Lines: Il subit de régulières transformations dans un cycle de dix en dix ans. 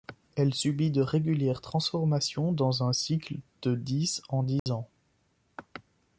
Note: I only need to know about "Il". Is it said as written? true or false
false